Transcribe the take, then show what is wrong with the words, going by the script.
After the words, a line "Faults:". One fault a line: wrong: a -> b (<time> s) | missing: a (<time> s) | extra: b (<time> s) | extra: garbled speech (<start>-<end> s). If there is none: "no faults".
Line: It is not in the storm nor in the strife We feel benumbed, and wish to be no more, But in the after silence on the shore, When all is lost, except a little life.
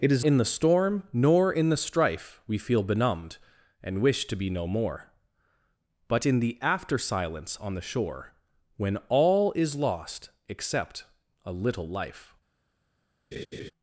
It is in the storm nor in the strife We feel benumbed, and wish to be no more, But in the after silence on the shore, When all is lost, except a little life.
Faults:
missing: not (0.2 s)